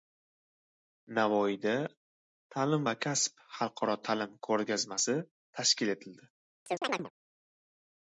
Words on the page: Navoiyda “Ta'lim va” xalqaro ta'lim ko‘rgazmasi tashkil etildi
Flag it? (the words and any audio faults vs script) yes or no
yes